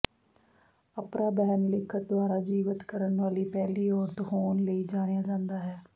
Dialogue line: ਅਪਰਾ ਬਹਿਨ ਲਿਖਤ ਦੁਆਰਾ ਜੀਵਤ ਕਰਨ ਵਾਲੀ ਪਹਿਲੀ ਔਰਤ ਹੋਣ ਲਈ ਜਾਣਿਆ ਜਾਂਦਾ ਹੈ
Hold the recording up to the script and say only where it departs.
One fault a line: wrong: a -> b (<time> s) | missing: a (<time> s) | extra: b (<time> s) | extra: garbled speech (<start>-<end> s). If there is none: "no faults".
no faults